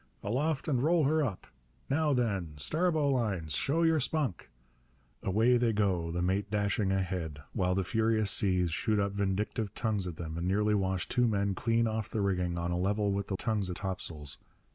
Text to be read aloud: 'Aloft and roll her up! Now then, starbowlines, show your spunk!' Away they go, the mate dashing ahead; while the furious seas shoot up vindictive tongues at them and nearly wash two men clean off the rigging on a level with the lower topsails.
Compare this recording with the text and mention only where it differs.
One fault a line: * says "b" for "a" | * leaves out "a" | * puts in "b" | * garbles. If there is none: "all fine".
* says "tongues" for "lower"